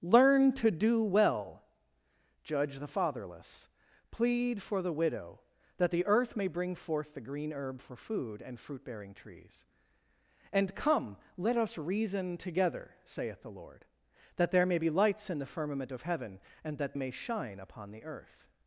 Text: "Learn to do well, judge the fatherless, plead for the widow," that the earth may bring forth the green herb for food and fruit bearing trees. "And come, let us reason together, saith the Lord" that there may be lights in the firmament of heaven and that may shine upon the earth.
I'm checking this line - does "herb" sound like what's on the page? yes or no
yes